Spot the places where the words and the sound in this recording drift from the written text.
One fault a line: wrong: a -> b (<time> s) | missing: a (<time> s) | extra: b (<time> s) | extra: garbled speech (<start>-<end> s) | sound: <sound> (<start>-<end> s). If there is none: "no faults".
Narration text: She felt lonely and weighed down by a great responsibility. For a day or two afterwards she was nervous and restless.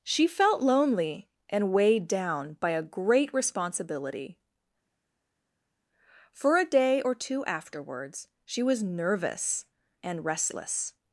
no faults